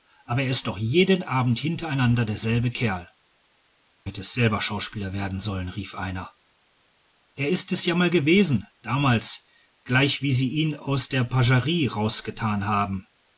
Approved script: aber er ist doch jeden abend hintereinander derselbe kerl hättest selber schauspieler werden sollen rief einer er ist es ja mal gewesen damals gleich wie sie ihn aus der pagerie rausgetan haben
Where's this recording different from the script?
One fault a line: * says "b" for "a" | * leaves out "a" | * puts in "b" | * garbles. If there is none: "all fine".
all fine